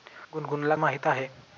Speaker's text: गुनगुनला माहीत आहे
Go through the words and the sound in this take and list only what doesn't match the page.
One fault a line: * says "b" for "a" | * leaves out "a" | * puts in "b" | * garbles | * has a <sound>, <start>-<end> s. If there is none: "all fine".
all fine